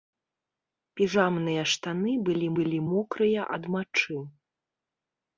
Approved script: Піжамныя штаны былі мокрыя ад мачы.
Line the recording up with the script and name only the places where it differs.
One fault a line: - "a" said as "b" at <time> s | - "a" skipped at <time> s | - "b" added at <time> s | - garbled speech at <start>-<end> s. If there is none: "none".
- "былі" added at 2.6 s